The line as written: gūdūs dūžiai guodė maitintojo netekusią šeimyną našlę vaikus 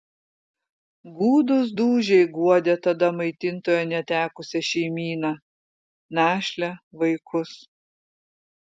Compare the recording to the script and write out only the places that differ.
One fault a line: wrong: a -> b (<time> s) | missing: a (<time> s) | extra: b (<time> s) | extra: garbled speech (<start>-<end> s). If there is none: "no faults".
extra: tada (2.9 s)